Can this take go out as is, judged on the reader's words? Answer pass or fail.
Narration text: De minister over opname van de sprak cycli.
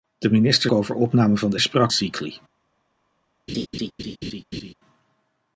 pass